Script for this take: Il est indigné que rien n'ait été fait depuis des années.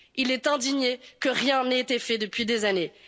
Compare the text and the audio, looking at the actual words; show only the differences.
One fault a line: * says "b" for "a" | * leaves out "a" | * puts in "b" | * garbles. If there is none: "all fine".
all fine